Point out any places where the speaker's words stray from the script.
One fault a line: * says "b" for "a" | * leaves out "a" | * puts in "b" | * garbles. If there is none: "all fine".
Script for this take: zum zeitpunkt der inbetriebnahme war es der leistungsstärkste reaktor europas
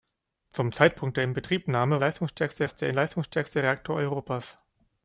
* says "leistungsstärkste" for "war"